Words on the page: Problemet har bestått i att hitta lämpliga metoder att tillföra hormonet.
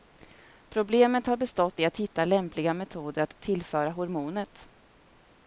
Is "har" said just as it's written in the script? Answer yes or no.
yes